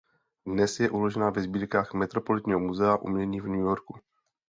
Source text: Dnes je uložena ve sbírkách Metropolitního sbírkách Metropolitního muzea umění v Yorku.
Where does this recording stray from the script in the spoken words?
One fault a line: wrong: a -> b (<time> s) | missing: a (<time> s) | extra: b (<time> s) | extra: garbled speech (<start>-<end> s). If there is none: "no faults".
missing: sbírkách Metropolitního (2.6 s)
extra: New (3.5 s)